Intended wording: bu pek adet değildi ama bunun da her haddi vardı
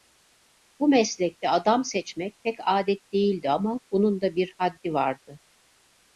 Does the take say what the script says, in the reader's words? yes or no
no